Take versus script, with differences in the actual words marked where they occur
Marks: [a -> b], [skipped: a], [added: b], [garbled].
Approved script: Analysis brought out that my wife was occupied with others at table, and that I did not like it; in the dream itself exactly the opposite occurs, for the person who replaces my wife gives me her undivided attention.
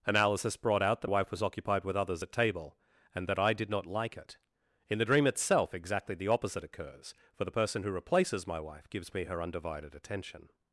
Analysis brought out that [skipped: my] wife was occupied with others at table, and that I did not like it; in the dream itself exactly the opposite occurs, for the person who replaces my wife gives me her undivided attention.